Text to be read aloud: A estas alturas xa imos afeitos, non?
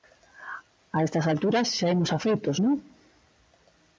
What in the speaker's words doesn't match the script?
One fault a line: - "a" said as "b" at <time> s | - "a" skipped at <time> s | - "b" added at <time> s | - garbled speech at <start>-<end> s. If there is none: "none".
none